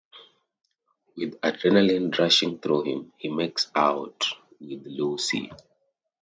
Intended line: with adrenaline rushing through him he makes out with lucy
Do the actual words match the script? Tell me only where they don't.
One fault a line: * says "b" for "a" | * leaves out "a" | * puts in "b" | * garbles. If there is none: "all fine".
all fine